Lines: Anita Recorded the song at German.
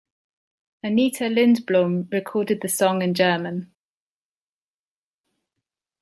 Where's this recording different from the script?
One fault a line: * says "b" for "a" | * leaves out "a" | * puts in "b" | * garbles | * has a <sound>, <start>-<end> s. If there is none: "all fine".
* puts in "Lindblom"
* says "in" for "at"